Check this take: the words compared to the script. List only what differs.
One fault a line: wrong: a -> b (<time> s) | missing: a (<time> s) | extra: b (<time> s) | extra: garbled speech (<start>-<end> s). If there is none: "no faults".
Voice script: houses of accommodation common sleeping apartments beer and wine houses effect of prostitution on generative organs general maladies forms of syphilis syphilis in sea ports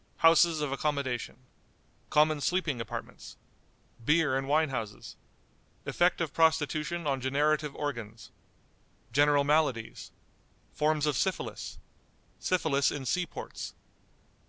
no faults